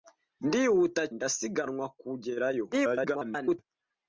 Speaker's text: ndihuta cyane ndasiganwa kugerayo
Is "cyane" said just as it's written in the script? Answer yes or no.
no